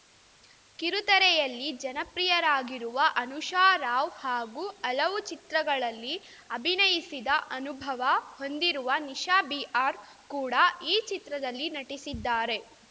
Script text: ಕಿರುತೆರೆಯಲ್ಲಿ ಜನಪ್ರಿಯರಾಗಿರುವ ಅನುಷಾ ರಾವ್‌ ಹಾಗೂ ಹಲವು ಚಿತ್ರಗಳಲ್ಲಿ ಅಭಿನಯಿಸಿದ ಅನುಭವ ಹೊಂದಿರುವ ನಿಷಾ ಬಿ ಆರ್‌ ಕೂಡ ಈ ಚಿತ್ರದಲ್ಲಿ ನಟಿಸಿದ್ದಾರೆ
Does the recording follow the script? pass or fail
pass